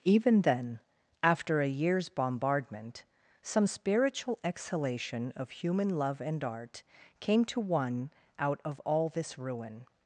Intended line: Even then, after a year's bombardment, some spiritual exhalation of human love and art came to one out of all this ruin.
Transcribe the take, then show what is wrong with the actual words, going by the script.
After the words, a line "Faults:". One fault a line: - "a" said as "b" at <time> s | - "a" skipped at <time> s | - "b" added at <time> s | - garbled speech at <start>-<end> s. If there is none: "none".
Even then, after a year's bombardment, some spiritual exhalation of human love and art came to one out of all this ruin.
Faults:
none